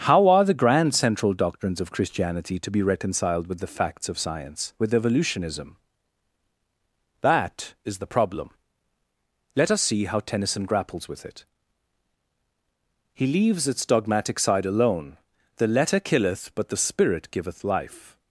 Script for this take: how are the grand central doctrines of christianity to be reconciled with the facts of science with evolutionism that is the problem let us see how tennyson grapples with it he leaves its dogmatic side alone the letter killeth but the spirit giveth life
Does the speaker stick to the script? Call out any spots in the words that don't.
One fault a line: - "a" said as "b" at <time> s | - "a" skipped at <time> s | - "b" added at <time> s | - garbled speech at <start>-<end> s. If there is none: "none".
none